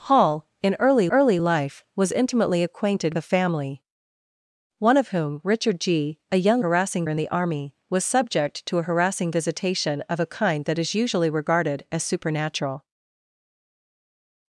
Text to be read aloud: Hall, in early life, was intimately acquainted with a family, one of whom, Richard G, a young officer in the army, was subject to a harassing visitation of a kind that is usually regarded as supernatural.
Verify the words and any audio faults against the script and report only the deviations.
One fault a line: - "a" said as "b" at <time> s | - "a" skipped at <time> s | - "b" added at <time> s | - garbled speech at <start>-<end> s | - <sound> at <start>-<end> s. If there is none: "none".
- "early" added at 1.1 s
- "with" skipped at 3.1 s
- "officer" said as "harassing" at 6.6 s